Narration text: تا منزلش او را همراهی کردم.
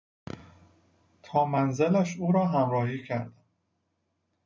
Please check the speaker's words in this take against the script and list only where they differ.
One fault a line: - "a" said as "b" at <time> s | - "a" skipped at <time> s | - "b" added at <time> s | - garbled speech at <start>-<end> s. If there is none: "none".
none